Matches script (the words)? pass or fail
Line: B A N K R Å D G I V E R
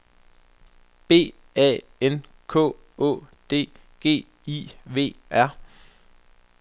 fail